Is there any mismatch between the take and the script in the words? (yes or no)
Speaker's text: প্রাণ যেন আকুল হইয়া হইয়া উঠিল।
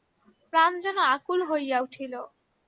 yes